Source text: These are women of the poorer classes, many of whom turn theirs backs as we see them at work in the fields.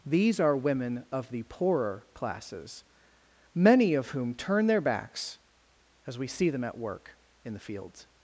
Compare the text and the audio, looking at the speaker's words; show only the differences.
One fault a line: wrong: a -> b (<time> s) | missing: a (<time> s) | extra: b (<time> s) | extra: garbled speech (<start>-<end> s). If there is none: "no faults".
wrong: theirs -> their (4.7 s)